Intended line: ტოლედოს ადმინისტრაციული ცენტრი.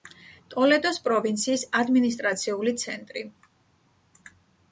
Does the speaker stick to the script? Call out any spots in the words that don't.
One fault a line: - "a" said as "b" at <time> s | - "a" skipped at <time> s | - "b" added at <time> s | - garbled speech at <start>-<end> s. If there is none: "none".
- "პროვინციის" added at 1.1 s